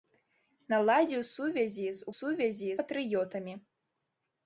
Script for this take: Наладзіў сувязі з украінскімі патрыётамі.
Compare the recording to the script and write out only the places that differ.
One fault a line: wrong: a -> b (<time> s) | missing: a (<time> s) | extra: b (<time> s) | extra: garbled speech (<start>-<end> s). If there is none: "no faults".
wrong: украінскімі -> сувязі (2.2 s)